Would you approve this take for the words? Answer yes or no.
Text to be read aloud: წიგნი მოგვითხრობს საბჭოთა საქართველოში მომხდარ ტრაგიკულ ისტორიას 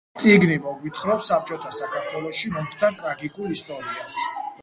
yes